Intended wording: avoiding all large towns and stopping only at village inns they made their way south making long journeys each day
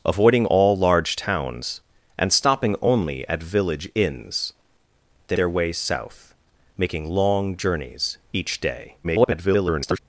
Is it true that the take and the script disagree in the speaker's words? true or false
true